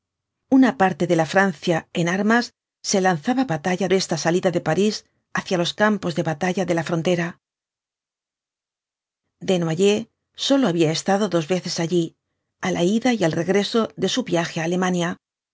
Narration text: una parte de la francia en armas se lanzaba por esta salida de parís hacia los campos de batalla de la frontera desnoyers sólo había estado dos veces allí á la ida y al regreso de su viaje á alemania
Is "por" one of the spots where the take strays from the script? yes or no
yes